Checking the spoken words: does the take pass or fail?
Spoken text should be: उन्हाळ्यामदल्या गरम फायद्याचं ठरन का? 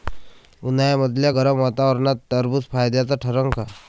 fail